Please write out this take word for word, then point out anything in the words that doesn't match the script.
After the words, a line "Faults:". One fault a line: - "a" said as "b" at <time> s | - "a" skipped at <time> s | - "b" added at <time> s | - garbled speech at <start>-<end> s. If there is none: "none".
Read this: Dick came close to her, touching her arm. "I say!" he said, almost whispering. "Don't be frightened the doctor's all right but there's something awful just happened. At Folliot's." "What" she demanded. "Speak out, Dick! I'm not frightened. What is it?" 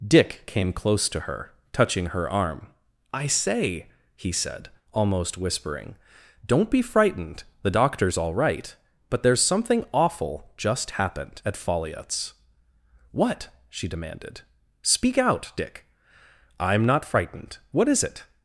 Dick came close to her, touching her arm. "I say!" he said, almost whispering. "Don't be frightened the doctor's all right but there's something awful just happened. At Folliot's." "What" she demanded. "Speak out, Dick! I'm not frightened. What is it?"
Faults:
none